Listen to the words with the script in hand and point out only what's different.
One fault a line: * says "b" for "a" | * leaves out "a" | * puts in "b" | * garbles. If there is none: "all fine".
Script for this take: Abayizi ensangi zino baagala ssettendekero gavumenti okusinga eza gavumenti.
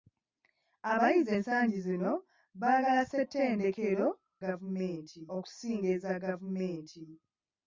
all fine